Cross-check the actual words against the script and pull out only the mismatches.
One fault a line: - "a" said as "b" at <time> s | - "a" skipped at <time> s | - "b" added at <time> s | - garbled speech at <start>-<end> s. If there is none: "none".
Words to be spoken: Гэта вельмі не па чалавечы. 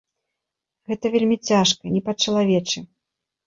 - "цяжка" added at 1.5 s